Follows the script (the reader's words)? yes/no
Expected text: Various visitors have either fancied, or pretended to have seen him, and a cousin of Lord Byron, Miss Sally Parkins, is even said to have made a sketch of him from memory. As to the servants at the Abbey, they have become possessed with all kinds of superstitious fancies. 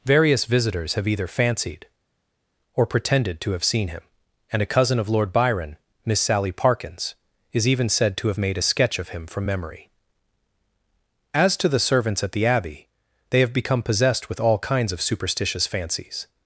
yes